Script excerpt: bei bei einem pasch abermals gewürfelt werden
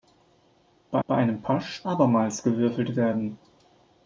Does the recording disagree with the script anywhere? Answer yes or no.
no